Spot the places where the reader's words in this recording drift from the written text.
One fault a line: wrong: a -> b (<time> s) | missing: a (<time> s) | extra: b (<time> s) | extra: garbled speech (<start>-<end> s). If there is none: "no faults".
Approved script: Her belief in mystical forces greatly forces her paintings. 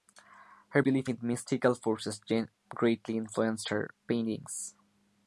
wrong: forces -> influenced (3.2 s)